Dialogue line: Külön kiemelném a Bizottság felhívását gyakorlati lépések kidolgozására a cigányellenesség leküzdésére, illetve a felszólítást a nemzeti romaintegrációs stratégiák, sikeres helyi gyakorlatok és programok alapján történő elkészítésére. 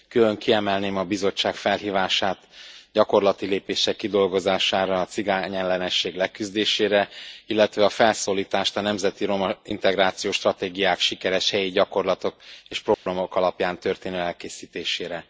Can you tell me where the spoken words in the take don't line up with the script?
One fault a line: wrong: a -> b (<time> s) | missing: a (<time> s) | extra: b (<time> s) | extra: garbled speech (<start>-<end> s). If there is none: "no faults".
no faults